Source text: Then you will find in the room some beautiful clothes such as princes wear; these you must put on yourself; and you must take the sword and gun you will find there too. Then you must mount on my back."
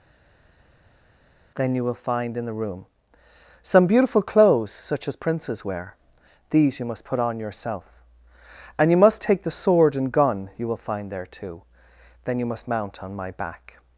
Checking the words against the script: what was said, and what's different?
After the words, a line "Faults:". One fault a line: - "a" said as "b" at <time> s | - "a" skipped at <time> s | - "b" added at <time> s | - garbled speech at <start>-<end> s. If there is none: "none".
Then you will find in the room some beautiful clothes such as princes wear; these you must put on yourself; and you must take the sword and gun you will find there too. Then you must mount on my back."
Faults:
none